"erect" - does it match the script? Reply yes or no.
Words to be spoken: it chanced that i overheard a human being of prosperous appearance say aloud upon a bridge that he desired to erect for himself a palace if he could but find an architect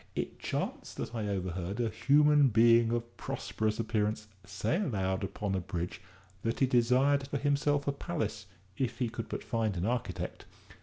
no